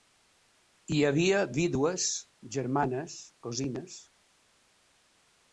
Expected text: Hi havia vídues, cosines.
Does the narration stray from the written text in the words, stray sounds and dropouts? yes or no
yes